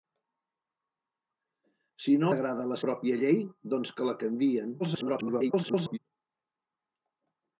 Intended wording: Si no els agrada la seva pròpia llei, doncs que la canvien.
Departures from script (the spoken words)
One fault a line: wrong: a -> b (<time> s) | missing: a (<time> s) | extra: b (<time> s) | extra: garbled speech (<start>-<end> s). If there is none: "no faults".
missing: els (2.3 s)
missing: seva (2.8 s)
extra: garbled speech (4.8-6.0 s)